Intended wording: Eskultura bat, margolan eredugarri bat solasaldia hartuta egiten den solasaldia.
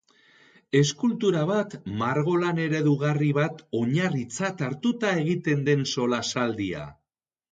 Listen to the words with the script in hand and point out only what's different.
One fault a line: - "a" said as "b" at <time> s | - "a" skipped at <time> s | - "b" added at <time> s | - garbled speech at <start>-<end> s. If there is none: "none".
- "solasaldia" said as "oinarritzat" at 3.8 s